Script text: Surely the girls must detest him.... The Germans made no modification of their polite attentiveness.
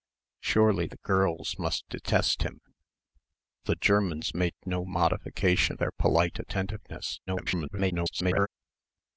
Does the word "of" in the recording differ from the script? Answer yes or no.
yes